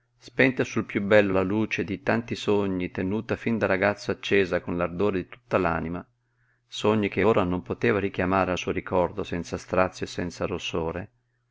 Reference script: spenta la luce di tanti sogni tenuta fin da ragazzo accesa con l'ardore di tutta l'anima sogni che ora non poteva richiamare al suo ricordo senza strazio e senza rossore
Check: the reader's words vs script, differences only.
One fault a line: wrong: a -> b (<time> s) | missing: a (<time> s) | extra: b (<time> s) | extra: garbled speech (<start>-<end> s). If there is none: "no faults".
extra: sul piú bello (0.6 s)